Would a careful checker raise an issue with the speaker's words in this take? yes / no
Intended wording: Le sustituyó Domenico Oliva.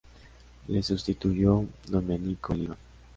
no